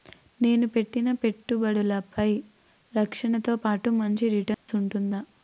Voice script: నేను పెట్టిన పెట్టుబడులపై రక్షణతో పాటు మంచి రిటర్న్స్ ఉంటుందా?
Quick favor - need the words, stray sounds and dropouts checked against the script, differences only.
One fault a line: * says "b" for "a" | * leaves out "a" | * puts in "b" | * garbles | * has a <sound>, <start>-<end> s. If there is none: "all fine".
* has a dropout, 4.5-4.7 s